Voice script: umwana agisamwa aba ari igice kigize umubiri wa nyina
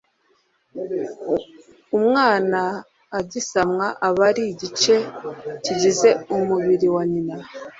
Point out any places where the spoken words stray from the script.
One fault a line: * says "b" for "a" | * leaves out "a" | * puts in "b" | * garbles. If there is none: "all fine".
all fine